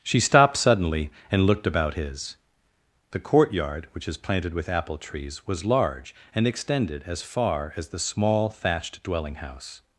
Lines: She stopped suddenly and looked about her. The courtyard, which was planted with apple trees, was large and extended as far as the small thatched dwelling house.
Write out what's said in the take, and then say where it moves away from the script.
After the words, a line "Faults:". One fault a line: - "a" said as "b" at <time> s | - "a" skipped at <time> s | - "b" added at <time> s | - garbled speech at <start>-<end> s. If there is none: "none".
She stopped suddenly and looked about his. The courtyard, which is planted with apple trees, was large and extended as far as the small thatched dwelling house.
Faults:
- "her" said as "his" at 1.9 s
- "was" said as "is" at 4.1 s